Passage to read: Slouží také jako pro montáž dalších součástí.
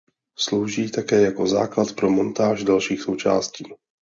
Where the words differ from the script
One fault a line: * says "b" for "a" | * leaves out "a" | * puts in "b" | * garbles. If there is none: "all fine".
* puts in "základ"